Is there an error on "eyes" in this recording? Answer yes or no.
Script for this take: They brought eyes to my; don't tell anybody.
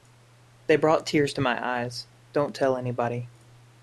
yes